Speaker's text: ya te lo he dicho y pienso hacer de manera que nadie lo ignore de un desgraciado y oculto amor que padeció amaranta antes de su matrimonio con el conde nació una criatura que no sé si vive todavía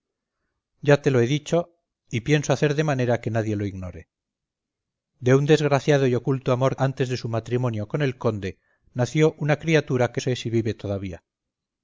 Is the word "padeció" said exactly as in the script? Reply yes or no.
no